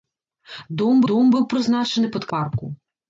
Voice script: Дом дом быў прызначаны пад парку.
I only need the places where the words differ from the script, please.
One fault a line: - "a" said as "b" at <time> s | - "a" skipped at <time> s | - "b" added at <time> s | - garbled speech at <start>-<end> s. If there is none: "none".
none